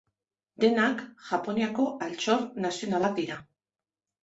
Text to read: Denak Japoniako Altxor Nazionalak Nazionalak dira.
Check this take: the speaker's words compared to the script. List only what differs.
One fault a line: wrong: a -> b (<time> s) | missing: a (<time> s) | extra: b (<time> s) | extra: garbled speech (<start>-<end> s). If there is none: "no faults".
missing: Nazionalak (3.2 s)